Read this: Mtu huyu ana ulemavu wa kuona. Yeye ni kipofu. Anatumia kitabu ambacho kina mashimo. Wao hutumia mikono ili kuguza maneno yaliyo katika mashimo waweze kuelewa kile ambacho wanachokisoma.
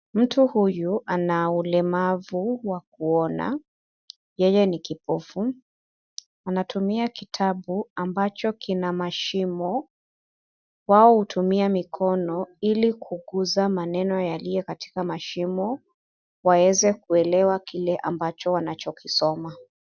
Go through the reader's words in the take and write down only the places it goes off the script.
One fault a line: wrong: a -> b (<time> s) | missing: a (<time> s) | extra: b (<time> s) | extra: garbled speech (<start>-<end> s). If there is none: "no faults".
no faults